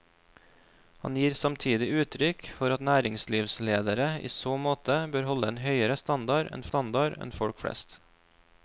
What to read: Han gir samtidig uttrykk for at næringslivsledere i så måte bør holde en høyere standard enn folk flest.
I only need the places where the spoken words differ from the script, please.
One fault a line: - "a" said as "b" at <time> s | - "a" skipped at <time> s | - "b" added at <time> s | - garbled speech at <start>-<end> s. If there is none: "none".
- "standard enn" added at 6.7 s